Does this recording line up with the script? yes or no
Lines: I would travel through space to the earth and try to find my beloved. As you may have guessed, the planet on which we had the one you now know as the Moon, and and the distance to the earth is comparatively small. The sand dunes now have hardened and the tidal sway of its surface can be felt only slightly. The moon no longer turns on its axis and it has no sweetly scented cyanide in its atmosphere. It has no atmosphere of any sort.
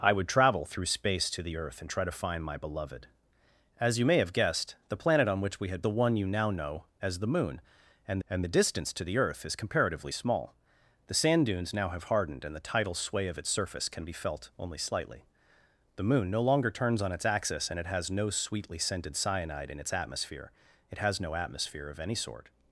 yes